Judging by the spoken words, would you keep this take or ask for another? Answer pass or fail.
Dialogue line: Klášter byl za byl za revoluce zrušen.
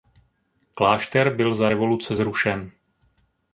fail